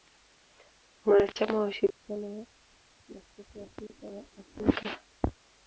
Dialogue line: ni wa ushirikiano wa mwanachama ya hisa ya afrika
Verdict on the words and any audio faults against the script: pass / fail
fail